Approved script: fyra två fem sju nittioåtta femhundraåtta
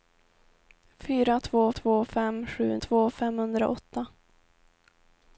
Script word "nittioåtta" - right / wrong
wrong